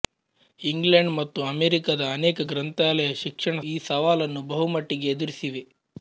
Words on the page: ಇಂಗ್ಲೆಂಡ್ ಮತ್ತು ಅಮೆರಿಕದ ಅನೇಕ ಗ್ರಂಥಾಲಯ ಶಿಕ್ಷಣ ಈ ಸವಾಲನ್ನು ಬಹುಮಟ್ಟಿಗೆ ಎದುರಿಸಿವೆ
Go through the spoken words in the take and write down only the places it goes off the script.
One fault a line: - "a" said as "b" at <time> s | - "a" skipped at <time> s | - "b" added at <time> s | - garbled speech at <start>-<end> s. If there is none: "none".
none